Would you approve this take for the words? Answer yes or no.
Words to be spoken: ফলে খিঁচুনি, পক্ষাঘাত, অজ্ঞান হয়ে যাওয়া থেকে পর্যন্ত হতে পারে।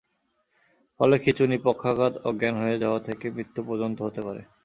no